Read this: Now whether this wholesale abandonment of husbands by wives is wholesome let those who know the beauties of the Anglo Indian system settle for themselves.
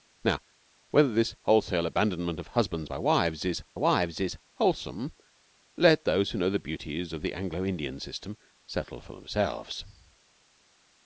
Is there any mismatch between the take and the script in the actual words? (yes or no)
yes